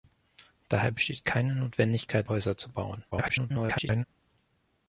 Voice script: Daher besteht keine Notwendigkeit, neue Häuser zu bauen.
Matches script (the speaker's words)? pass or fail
fail